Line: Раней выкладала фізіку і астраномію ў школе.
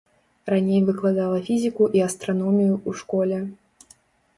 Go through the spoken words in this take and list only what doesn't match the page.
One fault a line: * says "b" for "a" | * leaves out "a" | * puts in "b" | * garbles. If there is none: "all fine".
all fine